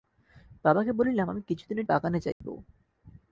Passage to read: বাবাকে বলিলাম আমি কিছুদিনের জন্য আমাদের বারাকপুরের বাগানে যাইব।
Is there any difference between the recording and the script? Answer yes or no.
yes